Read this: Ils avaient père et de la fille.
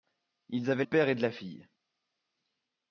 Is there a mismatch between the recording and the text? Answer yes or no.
no